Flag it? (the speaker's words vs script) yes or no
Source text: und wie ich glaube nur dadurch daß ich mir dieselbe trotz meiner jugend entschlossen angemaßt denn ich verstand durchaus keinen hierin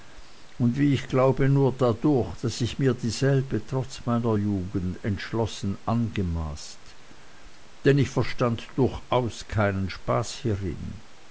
yes